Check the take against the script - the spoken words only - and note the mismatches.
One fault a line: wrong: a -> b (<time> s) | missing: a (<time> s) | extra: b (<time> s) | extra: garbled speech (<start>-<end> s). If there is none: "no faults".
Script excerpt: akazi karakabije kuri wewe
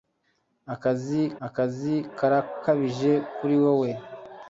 extra: akazi (1.5 s)